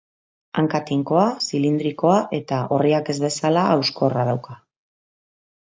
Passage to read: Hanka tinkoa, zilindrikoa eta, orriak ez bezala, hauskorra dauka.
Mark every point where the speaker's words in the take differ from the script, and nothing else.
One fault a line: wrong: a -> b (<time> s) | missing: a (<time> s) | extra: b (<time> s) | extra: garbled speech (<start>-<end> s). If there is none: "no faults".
no faults